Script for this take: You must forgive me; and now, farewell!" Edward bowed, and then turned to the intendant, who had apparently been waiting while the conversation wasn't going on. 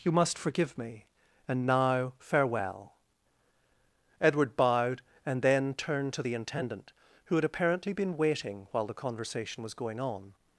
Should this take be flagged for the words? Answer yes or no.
yes